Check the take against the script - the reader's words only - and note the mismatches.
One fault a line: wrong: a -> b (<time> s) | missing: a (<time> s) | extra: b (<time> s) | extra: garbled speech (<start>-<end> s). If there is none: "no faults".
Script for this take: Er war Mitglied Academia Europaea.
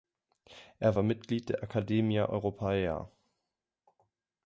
extra: der (1.5 s)